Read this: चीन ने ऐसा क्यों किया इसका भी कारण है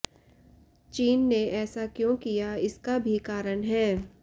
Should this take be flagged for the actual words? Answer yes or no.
no